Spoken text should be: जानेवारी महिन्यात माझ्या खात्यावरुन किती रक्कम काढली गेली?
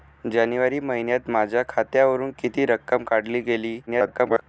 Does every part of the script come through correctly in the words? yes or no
no